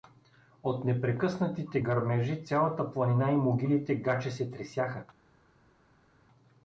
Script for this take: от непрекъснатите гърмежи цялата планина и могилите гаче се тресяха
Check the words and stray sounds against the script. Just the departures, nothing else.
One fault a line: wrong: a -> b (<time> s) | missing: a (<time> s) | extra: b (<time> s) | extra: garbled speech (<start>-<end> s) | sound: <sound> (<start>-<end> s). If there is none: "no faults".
no faults